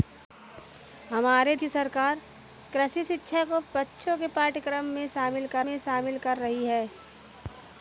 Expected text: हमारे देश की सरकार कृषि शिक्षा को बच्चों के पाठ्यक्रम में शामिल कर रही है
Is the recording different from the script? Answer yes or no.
yes